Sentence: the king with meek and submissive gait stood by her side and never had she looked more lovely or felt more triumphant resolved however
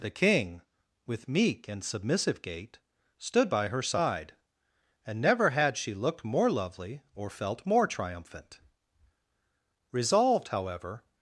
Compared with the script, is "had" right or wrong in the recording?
right